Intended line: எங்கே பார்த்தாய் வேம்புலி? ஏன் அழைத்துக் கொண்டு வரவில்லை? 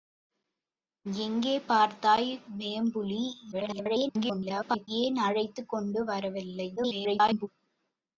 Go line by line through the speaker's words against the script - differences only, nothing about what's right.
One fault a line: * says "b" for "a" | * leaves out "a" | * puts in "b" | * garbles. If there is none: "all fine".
* garbles
* garbles